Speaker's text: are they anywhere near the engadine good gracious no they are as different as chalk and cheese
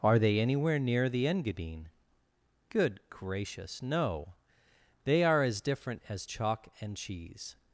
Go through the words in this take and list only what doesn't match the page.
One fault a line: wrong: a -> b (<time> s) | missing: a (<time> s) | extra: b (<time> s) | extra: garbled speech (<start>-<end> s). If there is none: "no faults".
no faults